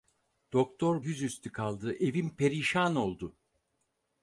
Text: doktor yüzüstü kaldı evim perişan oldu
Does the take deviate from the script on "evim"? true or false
false